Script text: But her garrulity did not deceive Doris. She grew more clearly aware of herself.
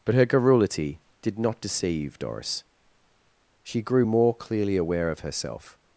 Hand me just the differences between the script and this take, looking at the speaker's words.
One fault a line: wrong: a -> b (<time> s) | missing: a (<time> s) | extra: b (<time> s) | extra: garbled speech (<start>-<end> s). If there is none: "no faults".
no faults